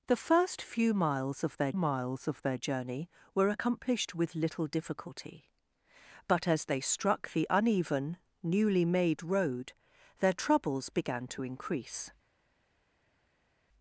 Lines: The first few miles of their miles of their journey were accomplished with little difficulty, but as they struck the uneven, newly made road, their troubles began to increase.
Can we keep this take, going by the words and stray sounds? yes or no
yes